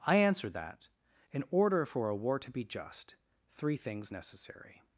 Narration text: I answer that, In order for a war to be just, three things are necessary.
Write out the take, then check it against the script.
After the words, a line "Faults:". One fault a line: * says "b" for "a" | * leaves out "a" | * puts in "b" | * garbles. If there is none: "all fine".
I answer that, In order for a war to be just, three things necessary.
Faults:
* leaves out "are"